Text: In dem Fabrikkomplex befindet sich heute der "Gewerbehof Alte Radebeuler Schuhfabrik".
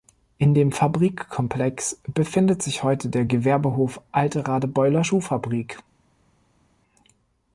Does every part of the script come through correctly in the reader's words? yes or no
yes